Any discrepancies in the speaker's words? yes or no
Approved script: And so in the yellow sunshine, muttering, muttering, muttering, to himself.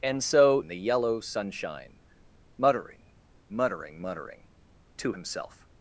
no